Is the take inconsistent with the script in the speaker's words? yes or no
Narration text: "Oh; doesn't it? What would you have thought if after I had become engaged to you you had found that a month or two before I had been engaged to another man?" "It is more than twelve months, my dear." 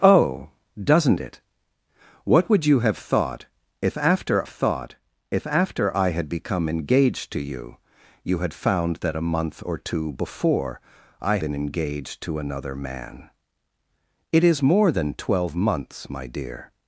yes